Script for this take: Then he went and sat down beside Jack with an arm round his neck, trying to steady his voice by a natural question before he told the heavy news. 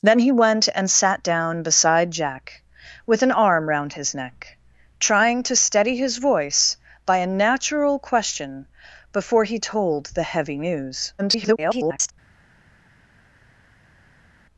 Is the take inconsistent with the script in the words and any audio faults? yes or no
yes